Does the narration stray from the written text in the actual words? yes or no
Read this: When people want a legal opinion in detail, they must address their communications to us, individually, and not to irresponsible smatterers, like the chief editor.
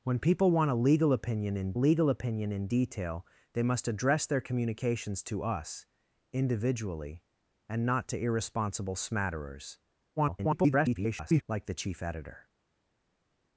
yes